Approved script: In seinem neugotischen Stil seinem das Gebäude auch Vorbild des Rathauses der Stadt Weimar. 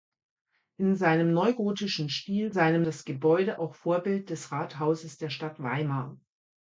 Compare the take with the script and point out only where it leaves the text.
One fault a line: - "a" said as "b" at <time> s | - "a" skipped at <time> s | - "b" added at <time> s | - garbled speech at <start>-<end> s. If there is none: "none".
none